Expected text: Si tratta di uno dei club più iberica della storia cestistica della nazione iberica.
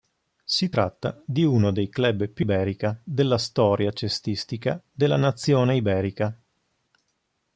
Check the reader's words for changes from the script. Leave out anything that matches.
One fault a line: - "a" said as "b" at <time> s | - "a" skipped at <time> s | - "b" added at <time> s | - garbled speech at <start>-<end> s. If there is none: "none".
none